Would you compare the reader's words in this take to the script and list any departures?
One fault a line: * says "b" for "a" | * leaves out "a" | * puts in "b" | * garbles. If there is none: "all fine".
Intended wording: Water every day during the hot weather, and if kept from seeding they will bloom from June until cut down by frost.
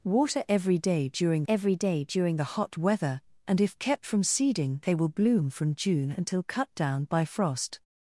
* puts in "every day during"